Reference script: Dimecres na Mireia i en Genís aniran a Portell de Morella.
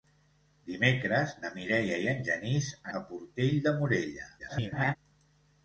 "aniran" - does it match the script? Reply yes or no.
no